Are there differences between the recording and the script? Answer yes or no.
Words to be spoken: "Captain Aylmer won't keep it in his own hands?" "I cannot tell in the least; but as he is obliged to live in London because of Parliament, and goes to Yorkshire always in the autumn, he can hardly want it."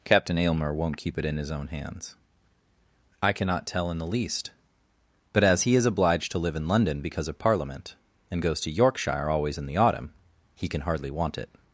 no